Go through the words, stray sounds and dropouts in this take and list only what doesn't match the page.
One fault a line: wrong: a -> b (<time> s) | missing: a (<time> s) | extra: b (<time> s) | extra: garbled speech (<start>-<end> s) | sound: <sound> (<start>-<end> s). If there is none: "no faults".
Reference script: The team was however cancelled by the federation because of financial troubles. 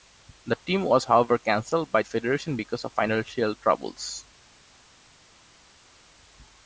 missing: the (2.0 s)